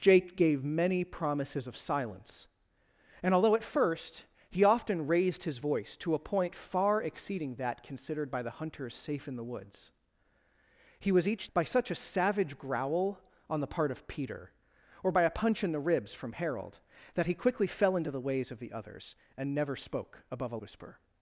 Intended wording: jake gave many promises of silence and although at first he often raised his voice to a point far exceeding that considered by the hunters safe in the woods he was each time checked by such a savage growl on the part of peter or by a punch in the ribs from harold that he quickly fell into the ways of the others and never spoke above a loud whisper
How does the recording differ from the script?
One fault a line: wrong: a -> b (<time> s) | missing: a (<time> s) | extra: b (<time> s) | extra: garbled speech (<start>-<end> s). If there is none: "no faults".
missing: time checked (11.5 s)
missing: loud (20.6 s)